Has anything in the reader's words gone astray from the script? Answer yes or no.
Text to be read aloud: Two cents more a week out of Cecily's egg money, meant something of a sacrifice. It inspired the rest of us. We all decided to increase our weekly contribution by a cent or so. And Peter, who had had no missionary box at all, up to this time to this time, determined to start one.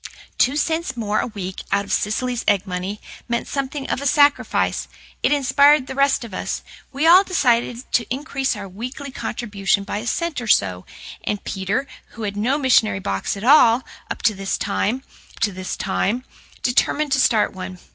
no